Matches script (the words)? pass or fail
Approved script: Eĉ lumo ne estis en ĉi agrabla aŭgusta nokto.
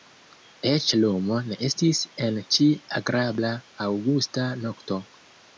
pass